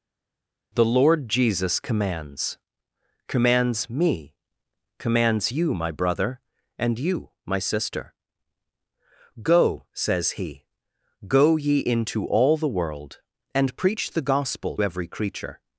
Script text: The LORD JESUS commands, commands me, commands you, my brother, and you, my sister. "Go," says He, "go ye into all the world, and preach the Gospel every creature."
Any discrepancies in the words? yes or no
no